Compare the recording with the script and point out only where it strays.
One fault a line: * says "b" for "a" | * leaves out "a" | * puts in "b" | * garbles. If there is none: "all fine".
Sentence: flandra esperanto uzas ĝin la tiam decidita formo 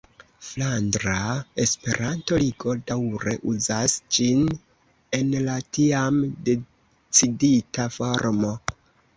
* puts in "ligo daŭre"
* puts in "en"